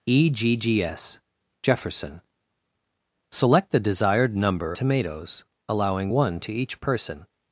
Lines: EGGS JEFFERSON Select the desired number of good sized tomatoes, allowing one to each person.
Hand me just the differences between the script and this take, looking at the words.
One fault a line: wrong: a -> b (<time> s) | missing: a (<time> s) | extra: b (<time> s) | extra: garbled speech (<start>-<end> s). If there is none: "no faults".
missing: of good sized (4.8 s)